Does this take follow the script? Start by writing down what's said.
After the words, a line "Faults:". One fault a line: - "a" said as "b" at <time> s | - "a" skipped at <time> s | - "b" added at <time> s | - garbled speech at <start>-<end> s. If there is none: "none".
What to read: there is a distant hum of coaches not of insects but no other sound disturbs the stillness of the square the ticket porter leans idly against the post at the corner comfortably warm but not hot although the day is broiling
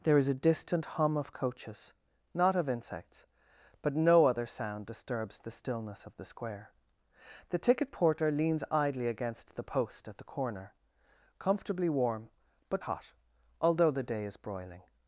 there is a distant hum of coaches not of insects but no other sound disturbs the stillness of the square the ticket porter leans idly against the post at the corner comfortably warm but hot although the day is broiling
Faults:
- "not" skipped at 12.8 s